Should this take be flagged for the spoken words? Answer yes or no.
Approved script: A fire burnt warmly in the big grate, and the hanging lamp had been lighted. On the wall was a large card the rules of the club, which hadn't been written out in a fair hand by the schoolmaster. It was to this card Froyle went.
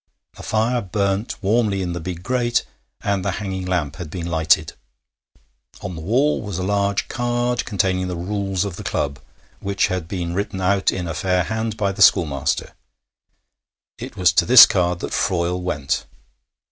yes